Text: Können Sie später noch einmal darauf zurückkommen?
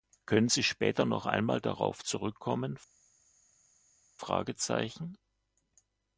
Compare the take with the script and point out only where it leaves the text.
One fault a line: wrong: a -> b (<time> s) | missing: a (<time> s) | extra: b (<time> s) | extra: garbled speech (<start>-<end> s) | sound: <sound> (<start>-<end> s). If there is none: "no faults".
no faults